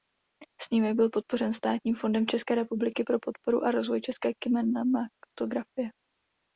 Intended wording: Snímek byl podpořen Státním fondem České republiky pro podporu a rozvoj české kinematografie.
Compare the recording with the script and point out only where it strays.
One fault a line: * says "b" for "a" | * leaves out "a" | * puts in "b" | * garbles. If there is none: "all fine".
all fine